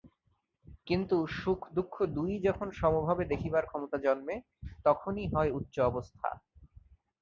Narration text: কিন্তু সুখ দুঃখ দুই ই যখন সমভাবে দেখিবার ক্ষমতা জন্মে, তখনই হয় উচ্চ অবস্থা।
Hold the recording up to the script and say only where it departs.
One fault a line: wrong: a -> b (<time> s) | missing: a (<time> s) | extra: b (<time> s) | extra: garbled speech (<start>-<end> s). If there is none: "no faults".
no faults